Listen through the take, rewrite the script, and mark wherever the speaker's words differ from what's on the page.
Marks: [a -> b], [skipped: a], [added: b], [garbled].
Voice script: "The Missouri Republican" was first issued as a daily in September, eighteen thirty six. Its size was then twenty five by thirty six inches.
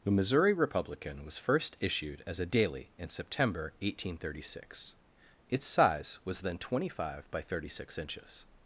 "The Missouri Republican" was first issued as a daily in September, eighteen thirty six. Its size was then twenty five by thirty six inches.